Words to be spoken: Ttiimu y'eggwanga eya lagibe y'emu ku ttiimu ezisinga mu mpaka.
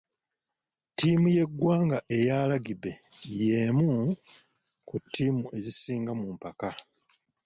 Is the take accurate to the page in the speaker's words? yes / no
yes